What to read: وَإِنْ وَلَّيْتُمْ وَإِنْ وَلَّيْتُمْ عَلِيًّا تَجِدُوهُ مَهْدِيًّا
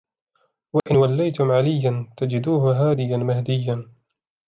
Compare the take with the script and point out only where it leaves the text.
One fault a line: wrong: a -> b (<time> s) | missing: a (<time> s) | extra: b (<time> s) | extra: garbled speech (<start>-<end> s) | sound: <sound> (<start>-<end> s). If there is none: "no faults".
sound: dropout (0.8-0.9 s)
missing: وَإِنْ وَلَّيْتُمْ (1.5 s)
extra: هَادِيًا (2.9 s)